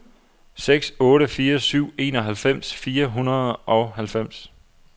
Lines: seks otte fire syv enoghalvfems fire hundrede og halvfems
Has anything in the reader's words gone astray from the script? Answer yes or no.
no